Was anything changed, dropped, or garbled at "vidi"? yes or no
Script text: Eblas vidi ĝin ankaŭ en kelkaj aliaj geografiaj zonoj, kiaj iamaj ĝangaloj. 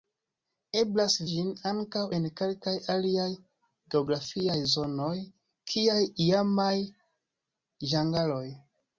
yes